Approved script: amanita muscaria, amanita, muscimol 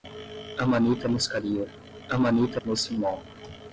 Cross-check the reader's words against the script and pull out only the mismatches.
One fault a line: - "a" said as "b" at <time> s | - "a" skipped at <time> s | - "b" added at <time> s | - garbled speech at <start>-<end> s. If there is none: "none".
none